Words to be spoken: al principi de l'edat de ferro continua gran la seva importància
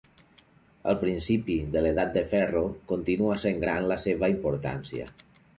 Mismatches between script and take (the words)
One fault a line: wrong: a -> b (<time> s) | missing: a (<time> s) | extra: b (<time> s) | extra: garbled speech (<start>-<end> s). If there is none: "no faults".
extra: sent (3.5 s)